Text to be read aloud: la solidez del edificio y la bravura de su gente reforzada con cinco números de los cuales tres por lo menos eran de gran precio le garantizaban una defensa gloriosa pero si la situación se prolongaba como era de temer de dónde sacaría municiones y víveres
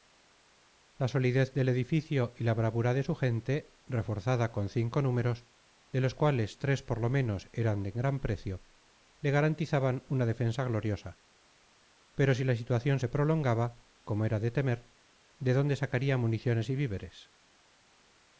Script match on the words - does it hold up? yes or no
yes